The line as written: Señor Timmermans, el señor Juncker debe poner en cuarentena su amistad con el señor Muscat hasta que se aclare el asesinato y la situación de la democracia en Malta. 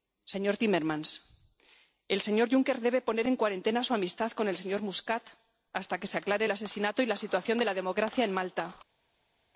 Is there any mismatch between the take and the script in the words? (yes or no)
no